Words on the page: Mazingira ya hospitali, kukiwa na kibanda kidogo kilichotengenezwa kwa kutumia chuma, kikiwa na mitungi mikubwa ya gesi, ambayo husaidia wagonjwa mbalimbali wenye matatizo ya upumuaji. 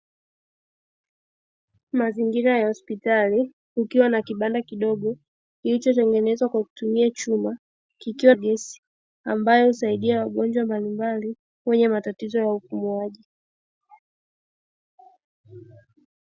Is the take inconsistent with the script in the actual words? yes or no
yes